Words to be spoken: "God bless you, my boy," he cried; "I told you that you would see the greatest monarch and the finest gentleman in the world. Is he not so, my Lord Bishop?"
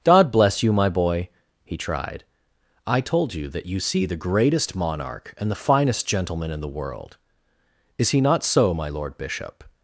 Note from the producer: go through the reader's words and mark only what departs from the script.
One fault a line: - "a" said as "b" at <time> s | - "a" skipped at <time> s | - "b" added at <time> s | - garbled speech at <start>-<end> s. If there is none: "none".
- "cried" said as "tried" at 1.8 s
- "would" skipped at 3.8 s